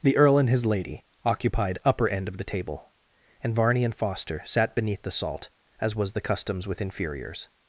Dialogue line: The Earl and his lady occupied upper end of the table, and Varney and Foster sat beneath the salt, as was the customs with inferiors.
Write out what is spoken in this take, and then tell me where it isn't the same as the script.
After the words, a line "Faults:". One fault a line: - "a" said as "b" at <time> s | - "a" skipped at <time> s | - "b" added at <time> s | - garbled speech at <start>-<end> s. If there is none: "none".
The Earl and his lady occupied upper end of the table, and Varney and Foster sat beneath the salt, as was the customs with inferiors.
Faults:
none